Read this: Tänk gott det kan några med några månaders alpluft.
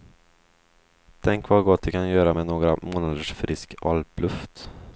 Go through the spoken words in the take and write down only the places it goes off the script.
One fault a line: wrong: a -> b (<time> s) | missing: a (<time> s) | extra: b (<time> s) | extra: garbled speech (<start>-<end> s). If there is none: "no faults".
extra: vad (1.5 s)
wrong: några -> göra (2.1 s)
extra: frisk (3.3 s)